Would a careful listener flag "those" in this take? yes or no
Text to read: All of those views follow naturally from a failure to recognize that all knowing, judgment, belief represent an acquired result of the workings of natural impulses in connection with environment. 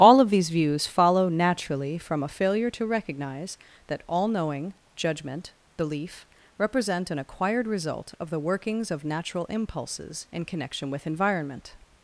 yes